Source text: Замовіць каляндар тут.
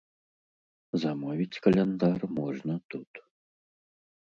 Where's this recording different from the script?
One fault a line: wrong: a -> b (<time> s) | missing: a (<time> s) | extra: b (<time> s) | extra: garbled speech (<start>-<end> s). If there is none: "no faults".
extra: можна (2.4 s)